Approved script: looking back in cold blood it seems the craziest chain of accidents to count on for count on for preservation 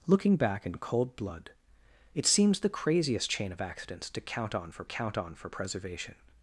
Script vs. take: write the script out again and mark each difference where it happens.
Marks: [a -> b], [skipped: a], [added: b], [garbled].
looking back in cold blood it seems the craziest chain of accidents to count on for count on for preservation